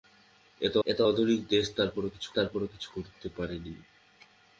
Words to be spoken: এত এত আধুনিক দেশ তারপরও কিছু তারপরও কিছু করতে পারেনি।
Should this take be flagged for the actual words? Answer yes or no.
no